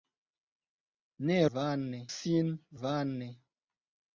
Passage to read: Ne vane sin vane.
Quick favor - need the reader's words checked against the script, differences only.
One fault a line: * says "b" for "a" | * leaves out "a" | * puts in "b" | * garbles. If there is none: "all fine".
all fine